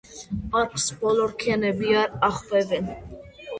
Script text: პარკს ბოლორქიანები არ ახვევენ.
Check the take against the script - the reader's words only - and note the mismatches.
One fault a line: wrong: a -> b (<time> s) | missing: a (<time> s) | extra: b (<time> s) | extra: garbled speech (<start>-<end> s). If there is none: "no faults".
no faults